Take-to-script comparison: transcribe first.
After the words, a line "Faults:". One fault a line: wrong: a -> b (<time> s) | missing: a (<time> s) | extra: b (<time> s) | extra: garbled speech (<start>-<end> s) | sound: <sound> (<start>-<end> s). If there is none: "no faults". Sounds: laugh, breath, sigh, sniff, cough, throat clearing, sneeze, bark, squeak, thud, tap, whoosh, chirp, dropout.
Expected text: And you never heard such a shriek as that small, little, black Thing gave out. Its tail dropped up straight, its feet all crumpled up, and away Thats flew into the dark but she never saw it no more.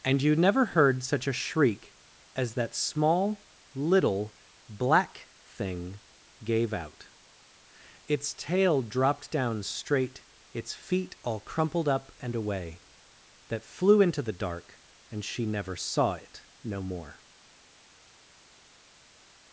And you never heard such a shriek as that small, little, black Thing gave out. Its tail dropped down straight, its feet all crumpled up, and away That flew into the dark and she never saw it no more.
Faults:
wrong: up -> down (9.3 s)
wrong: Thats -> That (13.5 s)
wrong: but -> and (15.1 s)